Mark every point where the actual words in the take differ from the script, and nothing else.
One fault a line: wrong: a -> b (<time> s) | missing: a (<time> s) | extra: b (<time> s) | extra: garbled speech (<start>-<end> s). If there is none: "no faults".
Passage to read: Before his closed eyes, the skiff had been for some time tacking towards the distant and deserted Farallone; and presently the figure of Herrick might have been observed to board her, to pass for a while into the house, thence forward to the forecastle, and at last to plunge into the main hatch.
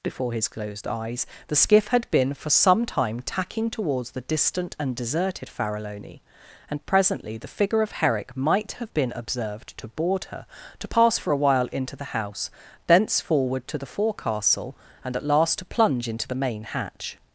no faults